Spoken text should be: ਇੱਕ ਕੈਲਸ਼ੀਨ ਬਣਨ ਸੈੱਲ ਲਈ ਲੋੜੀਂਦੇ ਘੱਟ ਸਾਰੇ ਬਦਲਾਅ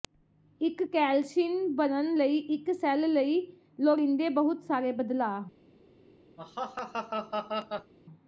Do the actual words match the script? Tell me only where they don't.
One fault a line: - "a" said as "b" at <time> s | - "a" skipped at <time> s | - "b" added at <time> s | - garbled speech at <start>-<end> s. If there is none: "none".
- "ਲਈ ਇੱਕ" added at 2.2 s
- "ਘੱਟ" said as "ਬਹੁਤ" at 4.3 s